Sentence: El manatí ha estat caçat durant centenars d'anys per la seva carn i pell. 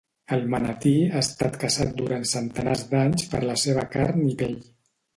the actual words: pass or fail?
pass